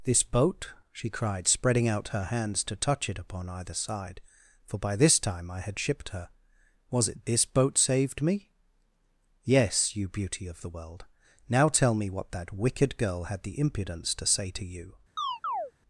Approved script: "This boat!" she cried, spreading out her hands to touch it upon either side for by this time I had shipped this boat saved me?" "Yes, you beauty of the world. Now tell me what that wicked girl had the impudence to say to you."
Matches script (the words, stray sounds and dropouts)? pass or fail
fail